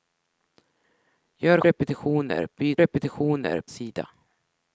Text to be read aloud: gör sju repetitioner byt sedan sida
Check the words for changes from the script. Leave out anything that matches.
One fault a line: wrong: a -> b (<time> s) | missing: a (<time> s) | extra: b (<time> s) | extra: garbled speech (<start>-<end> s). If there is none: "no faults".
missing: sju (1.6 s)
wrong: sedan -> repetitioner (2.8 s)